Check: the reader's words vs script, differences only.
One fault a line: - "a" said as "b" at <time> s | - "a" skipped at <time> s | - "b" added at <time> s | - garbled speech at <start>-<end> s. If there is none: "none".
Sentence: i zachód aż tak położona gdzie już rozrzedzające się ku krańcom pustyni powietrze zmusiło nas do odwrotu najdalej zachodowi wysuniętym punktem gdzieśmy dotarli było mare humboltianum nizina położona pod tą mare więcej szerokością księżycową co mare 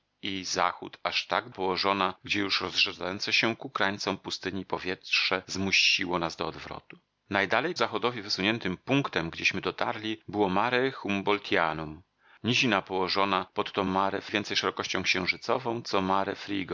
none